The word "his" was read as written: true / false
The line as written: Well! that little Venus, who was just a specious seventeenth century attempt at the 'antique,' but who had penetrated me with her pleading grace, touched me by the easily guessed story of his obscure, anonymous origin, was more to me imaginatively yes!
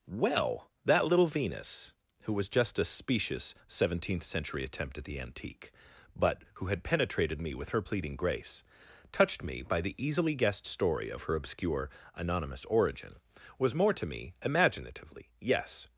false